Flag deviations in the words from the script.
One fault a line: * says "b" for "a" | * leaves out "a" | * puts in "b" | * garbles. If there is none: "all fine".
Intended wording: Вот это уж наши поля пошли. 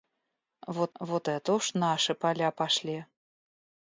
* puts in "вот"